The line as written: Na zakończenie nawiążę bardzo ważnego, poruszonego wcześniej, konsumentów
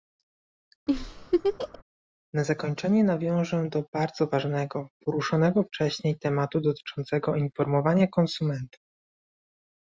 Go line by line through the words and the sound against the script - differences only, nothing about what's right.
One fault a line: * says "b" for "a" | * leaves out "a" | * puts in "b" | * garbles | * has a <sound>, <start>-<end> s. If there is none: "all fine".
* has a laugh, 0.9-1.8 s
* puts in "do"
* puts in "tematu dotyczącego informowania"